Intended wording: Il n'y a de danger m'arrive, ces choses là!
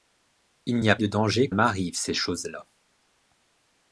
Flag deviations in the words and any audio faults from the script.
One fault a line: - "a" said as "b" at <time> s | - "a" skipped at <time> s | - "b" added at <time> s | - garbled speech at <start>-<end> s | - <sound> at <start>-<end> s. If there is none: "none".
none